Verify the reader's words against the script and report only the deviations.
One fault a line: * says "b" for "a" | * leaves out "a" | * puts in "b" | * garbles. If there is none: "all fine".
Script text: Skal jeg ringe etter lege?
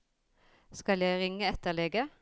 all fine